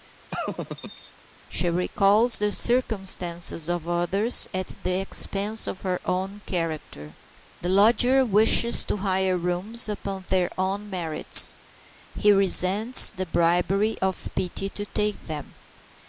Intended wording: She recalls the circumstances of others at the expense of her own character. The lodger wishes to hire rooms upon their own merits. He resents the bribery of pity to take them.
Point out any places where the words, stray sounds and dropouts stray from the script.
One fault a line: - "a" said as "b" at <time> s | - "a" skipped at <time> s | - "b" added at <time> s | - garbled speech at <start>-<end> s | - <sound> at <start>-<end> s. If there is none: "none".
- laugh at 0.3-1.1 s